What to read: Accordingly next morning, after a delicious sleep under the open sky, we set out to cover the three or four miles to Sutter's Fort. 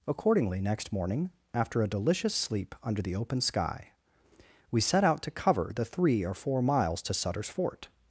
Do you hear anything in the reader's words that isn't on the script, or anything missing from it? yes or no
no